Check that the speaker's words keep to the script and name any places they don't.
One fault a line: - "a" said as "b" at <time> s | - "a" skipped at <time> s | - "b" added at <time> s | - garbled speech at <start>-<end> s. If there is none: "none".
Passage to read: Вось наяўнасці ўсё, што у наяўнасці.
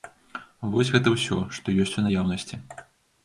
- "наяўнасці" said as "гэта" at 0.9 s
- "ёсць" added at 1.8 s